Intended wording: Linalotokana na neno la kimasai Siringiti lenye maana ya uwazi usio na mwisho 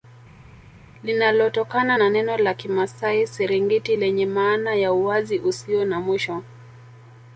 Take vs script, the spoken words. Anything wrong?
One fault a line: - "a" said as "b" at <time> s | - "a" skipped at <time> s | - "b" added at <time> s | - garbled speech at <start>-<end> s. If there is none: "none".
none